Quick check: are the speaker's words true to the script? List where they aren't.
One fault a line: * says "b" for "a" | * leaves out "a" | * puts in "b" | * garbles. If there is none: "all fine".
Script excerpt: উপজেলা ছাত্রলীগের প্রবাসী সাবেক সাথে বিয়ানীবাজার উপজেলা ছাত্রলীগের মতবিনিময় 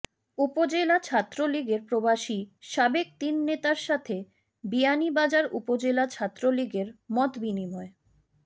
* puts in "তিন নেতার"